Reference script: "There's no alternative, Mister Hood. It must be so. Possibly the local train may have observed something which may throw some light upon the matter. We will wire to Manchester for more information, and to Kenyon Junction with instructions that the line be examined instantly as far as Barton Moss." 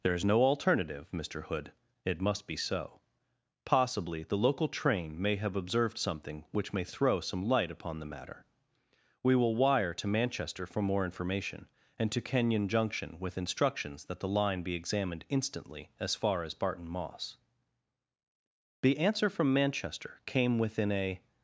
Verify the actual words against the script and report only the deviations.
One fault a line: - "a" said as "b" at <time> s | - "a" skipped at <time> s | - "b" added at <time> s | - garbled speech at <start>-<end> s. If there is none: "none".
- "The answer from Manchester came within a" added at 18.8 s